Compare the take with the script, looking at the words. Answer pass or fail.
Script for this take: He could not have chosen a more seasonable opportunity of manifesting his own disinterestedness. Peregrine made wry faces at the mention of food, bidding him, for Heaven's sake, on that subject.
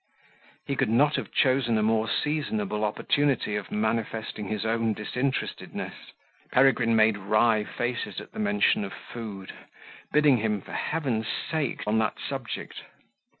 pass